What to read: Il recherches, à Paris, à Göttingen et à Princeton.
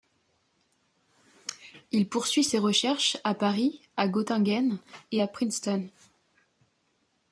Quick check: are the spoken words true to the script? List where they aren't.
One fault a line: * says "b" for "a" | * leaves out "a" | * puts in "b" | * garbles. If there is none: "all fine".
* puts in "poursuit ses"